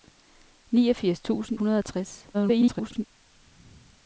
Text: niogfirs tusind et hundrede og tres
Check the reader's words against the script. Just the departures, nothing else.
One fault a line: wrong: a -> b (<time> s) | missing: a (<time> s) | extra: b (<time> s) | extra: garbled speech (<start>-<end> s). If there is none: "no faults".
missing: et (1.6 s)
extra: garbled speech (2.3-3.1 s)